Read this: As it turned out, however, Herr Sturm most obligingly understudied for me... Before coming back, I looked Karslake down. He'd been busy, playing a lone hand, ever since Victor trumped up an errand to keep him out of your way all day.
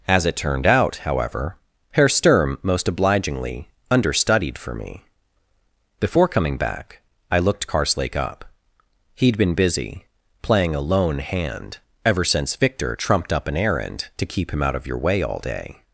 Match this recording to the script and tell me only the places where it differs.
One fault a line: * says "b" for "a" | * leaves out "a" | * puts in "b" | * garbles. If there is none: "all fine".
* says "up" for "down"